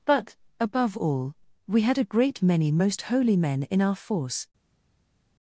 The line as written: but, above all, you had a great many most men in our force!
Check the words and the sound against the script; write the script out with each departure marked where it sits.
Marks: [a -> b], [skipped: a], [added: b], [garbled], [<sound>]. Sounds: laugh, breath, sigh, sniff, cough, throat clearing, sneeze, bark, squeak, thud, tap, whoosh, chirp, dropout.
but, above all, [you -> we] had a great many most [added: holy] men in our force!